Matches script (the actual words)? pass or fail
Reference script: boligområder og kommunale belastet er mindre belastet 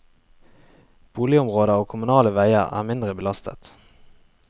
fail